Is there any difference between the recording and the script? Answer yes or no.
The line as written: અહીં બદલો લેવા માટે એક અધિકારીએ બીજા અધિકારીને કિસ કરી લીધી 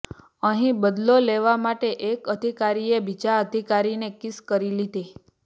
no